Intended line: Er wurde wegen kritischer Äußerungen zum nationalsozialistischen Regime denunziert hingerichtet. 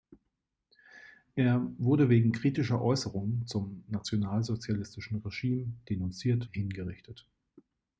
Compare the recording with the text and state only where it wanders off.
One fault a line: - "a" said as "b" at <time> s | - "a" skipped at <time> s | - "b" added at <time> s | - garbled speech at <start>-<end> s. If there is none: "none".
none